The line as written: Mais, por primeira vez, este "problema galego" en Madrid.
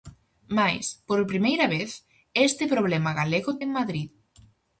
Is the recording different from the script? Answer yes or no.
no